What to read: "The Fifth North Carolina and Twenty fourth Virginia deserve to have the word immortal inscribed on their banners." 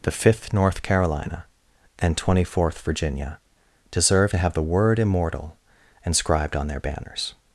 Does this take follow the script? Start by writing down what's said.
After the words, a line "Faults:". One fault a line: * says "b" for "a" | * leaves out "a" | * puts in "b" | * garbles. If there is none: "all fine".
"The Fifth North Carolina and Twenty fourth Virginia deserve to have the word immortal inscribed on their banners."
Faults:
all fine